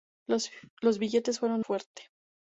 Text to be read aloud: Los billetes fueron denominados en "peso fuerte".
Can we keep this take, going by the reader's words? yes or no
no